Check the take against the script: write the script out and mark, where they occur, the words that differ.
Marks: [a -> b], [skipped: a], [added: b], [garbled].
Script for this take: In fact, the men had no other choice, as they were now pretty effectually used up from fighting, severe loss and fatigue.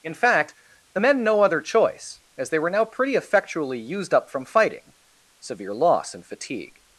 In fact, the men [skipped: had] no other choice, as they were now pretty effectually used up from fighting, severe loss and fatigue.